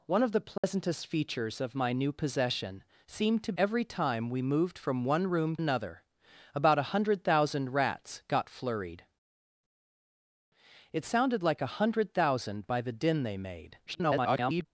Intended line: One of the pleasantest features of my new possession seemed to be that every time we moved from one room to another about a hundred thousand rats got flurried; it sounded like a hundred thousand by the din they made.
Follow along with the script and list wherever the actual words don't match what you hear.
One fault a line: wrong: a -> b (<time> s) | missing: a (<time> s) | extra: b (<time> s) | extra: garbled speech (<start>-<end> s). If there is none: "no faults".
missing: be that (3.5 s)
missing: to (5.5 s)
extra: garbled speech (13.9-14.7 s)